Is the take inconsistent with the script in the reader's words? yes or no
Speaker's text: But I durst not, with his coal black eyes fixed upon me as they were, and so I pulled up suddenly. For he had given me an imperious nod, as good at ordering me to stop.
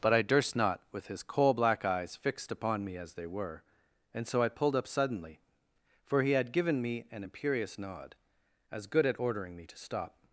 no